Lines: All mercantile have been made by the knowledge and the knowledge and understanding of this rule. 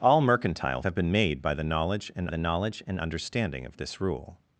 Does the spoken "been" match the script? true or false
true